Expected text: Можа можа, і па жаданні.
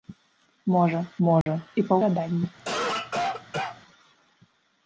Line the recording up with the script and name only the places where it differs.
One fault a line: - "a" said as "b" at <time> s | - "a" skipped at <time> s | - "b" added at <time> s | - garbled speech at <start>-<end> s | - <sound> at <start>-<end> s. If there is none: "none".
- dropout at 1.4-1.5 s
- cough at 2.6-3.8 s